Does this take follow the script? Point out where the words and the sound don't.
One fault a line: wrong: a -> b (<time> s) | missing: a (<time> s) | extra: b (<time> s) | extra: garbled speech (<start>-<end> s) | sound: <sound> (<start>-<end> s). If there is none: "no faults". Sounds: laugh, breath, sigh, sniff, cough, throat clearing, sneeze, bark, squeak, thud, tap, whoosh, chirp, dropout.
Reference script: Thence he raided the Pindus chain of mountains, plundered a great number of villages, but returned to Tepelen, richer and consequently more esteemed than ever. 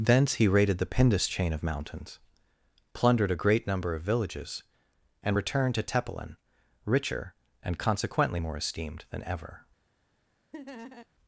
wrong: but -> and (5.2 s)
sound: laugh (10.5-11.1 s)